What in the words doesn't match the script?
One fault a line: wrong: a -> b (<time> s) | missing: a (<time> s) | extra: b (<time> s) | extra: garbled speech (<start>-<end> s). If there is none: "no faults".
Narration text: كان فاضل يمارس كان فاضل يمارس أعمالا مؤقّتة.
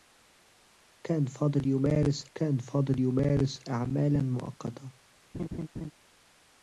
no faults